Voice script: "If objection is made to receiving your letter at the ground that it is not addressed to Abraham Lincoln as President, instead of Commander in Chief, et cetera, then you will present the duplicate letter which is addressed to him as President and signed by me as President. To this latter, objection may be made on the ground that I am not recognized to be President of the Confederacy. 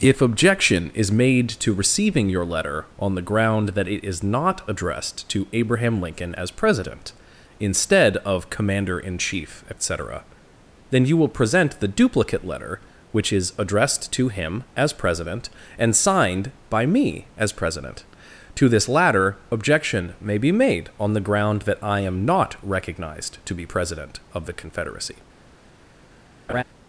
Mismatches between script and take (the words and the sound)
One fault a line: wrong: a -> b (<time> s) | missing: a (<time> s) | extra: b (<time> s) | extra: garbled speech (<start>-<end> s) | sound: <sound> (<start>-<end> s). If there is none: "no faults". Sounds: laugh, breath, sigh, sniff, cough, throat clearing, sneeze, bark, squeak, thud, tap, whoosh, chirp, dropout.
wrong: at -> on (3.0 s)
sound: laugh (26.5-26.6 s)